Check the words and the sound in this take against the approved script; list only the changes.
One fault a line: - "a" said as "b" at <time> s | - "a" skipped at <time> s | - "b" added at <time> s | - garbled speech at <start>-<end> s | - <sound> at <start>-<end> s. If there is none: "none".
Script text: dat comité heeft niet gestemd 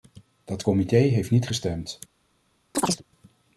- chirp at 2.7-3.0 s